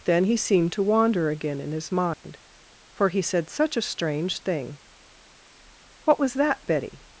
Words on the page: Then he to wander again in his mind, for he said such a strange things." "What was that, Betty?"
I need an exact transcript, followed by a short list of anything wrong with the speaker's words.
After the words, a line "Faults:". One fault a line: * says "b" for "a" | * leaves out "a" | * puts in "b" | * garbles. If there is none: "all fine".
Then he seemed to wander again in his mind, for he said such a strange thing." "What was that, Betty?"
Faults:
* puts in "seemed"
* says "thing" for "things"